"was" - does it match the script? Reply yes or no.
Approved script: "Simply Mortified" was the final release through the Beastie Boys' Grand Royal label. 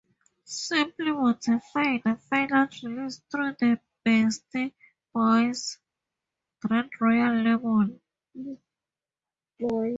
no